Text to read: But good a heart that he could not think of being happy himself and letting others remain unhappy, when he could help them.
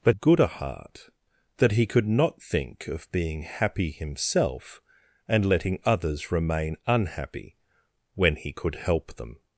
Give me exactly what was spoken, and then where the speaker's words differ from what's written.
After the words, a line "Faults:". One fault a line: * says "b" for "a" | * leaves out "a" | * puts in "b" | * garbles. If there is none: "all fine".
But good a heart that he could not think of being happy himself and letting others remain unhappy, when he could help them.
Faults:
all fine